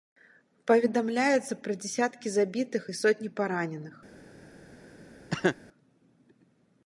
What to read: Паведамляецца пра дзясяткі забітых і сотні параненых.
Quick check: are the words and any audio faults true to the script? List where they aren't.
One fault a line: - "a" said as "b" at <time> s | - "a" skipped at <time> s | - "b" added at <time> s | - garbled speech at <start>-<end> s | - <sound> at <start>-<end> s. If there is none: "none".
- cough at 5.3-5.6 s